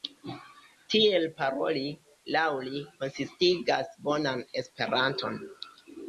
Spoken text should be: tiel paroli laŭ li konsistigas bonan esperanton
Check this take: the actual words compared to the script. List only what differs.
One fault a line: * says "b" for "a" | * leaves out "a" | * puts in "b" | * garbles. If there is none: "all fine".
all fine